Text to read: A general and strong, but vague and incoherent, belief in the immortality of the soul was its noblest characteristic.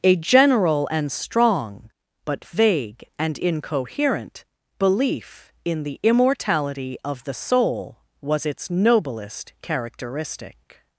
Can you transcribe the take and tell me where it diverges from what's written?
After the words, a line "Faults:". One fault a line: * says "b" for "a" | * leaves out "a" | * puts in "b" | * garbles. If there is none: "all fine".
A general and strong, but vague and incoherent, belief in the immortality of the soul was its noblest characteristic.
Faults:
all fine